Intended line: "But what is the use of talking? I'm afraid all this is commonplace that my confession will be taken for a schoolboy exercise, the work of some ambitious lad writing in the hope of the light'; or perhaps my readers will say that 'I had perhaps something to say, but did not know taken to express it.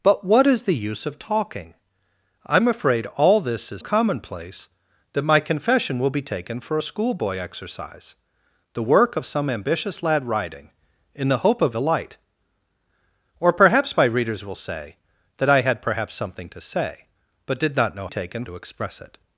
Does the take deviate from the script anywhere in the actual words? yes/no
no